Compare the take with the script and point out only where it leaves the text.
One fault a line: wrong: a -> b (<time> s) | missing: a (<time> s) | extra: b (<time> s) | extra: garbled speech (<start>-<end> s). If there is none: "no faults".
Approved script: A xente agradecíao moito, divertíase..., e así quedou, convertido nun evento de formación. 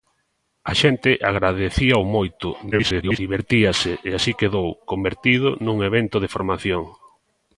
extra: garbled speech (2.7-3.2 s)